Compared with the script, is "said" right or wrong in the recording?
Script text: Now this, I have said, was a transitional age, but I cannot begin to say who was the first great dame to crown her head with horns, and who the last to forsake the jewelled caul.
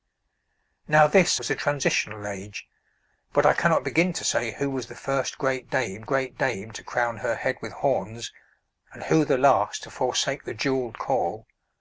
wrong